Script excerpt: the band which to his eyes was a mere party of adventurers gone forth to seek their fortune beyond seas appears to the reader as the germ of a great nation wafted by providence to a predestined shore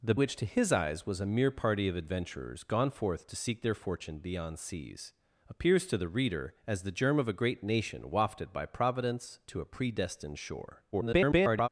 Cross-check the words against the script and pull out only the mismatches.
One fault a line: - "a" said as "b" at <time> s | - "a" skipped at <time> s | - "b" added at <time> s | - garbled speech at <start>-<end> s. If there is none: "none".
- "band" skipped at 0.1 s
- garbled speech at 10.9-11.7 s